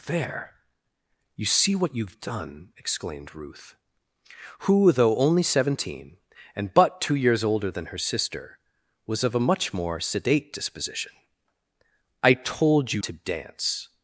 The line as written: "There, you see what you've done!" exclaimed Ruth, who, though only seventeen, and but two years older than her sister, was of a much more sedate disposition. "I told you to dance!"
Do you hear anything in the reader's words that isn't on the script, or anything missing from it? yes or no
no